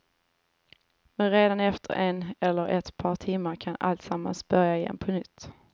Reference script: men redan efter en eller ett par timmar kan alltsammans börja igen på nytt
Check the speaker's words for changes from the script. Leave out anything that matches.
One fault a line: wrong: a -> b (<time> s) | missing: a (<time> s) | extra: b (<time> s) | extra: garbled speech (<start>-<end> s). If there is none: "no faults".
no faults